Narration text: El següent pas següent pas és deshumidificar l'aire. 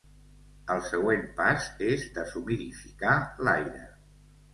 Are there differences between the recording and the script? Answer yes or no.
yes